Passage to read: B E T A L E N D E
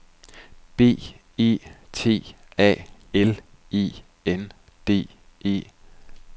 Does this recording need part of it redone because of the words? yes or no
no